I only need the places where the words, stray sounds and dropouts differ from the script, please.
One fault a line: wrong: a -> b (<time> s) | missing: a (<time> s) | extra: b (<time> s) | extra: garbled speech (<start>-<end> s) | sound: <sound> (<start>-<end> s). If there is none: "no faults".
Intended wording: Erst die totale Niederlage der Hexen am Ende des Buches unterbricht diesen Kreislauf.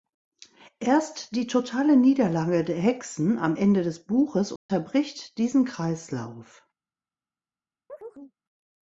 sound: dropout (4.6-4.7 s)
sound: chirp (7.9-8.3 s)